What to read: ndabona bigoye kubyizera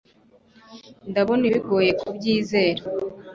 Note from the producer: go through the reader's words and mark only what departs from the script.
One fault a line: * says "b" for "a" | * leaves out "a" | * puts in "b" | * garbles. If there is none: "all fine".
all fine